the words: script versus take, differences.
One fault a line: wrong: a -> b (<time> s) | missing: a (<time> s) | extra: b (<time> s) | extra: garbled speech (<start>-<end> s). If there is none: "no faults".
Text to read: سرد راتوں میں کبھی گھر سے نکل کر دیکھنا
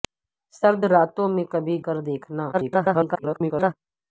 missing: گھر سے نکل (1.8 s)
extra: garbled speech (2.5-3.7 s)